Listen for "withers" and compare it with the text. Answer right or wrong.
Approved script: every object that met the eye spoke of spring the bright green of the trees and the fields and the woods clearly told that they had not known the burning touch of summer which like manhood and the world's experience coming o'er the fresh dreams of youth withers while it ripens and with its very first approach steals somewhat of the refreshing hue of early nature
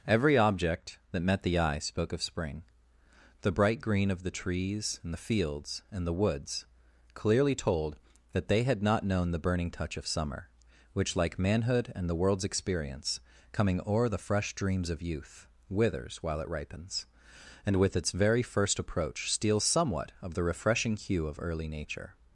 right